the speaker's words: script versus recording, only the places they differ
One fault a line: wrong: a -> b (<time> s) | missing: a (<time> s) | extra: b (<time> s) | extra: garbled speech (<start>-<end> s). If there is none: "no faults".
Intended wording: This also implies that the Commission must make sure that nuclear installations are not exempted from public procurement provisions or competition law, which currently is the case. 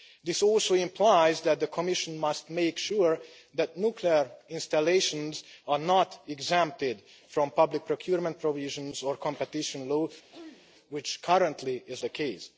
no faults